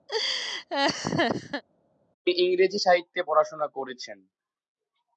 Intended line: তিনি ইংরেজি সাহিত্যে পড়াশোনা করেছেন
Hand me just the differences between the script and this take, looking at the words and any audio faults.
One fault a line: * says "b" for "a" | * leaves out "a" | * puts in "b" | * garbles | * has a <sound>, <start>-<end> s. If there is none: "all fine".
* has a laugh, 0.1-1.6 s